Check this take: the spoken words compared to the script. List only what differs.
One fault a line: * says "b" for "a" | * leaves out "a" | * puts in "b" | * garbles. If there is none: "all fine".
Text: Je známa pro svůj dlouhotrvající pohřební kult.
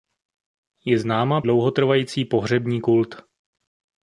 * leaves out "pro svůj"